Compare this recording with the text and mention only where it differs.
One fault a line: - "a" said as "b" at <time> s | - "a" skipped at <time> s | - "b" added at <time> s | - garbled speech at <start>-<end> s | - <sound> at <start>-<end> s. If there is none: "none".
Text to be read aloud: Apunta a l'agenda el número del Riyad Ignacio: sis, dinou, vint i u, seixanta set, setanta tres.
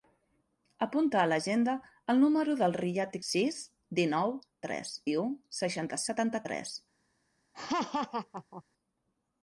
- "Ignacio" skipped at 3.2 s
- "vint" said as "tres" at 4.7 s
- "set" skipped at 6.0 s
- laugh at 7.5-8.6 s